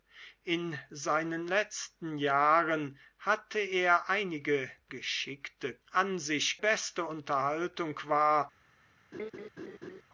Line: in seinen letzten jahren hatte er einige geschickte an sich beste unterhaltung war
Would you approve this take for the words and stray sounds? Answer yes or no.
no